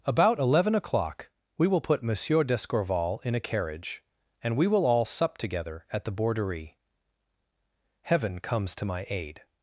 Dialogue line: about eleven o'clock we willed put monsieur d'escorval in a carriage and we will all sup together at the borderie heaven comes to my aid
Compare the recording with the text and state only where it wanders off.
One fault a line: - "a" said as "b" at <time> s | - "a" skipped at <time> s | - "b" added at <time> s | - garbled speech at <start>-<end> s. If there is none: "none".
- "willed" said as "will" at 1.7 s